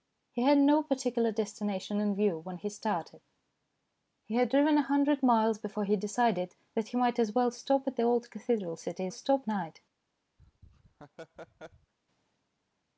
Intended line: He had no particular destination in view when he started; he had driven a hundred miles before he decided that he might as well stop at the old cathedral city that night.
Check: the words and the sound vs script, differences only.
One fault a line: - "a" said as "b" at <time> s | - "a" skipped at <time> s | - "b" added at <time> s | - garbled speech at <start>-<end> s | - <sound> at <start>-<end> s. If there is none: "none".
- "that" said as "stop" at 9.1 s
- laugh at 10.4-11.9 s